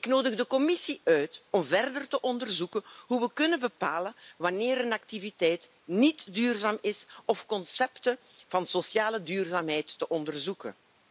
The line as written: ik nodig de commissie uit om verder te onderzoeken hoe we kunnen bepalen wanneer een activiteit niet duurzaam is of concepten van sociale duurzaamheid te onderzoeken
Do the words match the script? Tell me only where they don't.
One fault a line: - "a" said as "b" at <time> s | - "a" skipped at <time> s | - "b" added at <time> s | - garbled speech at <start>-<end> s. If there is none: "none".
none